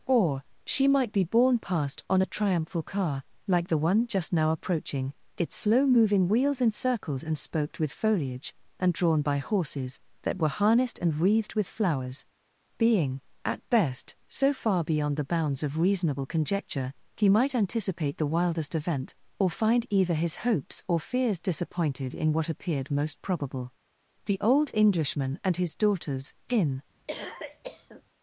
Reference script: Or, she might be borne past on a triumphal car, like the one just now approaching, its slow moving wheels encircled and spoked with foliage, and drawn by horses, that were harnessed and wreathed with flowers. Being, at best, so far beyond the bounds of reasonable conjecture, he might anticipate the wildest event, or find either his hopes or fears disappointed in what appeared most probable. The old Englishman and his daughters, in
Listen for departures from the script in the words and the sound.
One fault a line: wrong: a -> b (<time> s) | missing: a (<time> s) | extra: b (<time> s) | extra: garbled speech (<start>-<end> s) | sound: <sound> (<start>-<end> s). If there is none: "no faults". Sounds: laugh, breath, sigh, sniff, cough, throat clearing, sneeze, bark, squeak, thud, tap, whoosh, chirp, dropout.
sound: cough (27.1-28.0 s)